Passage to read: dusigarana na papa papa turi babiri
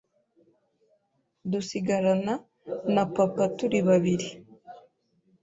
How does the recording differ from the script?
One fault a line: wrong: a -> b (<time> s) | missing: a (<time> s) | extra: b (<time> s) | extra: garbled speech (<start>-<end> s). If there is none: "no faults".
missing: papa (3.4 s)